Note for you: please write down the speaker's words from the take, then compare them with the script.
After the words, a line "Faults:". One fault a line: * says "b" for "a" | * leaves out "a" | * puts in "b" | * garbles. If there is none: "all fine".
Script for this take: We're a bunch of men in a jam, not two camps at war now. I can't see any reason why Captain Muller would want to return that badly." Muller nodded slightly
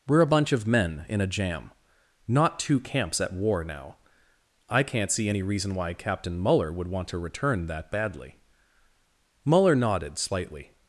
We're a bunch of men in a jam, not two camps at war now. I can't see any reason why Captain Muller would want to return that badly." Muller nodded slightly
Faults:
all fine